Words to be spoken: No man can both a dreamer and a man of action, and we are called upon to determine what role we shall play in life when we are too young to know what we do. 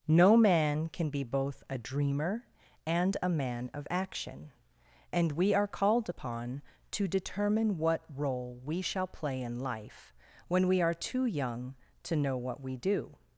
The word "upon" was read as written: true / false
true